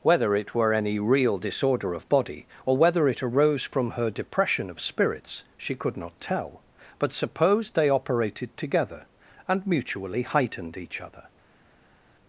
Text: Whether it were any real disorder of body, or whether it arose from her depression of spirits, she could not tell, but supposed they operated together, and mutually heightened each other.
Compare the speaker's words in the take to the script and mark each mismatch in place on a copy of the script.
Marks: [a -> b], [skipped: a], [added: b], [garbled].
Whether it were any real disorder of body, or whether it arose from her depression of spirits, she could not tell, but supposed they operated together, and mutually heightened each other.